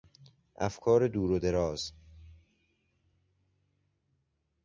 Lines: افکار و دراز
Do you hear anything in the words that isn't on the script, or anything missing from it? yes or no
yes